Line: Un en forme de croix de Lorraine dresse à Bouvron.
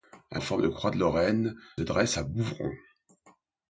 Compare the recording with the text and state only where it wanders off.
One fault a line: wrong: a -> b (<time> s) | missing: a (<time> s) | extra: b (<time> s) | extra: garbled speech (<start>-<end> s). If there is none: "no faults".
no faults